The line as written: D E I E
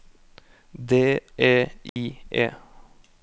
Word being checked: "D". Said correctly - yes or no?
yes